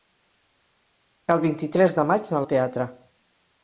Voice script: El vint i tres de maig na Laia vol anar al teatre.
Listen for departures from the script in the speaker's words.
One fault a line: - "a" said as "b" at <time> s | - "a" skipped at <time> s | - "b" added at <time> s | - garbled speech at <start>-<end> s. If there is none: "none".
- "Laia vol anar" skipped at 2.4 s